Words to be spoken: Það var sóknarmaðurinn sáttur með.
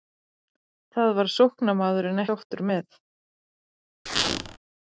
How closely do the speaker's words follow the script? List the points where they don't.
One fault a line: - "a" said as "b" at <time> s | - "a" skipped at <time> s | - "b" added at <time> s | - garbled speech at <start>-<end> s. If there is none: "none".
none